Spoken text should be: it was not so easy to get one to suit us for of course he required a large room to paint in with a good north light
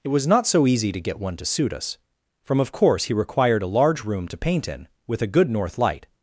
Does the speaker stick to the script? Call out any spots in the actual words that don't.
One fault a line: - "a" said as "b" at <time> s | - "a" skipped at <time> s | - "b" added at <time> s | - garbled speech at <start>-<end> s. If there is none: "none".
- "for" said as "from" at 2.4 s